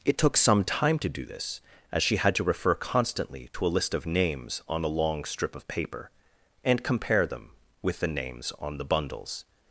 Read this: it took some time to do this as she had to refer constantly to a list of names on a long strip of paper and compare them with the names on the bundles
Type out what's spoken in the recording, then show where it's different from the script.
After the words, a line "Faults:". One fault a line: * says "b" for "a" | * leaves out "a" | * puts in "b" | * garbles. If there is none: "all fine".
it took some time to do this as she had to refer constantly to a list of names on a long strip of paper and compare them with the names on the bundles
Faults:
all fine